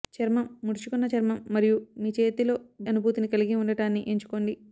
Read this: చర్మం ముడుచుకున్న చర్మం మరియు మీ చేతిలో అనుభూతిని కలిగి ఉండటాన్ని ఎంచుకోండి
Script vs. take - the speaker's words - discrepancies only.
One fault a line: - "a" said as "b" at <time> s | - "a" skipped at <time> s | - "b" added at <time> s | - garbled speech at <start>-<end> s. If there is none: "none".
none